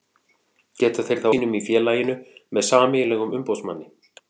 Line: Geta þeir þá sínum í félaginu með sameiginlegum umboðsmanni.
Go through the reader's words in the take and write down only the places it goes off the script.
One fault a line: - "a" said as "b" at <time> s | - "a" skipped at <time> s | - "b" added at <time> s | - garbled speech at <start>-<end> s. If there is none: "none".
none